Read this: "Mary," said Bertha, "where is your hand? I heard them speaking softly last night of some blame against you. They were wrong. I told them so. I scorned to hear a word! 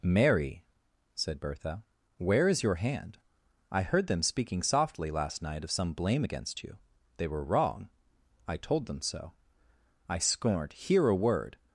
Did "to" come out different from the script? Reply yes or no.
yes